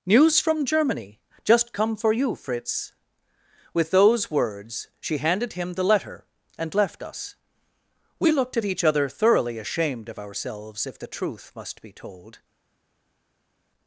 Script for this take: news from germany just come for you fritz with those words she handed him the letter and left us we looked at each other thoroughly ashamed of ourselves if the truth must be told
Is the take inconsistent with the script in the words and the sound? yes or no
no